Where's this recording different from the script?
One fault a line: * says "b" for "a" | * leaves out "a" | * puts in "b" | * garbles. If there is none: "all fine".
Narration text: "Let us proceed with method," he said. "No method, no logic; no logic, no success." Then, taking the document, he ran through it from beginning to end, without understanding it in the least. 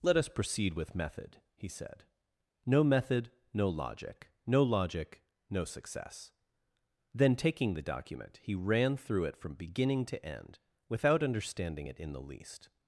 all fine